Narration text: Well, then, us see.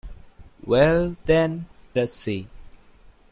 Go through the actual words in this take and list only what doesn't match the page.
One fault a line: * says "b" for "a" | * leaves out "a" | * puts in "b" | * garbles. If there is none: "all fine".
all fine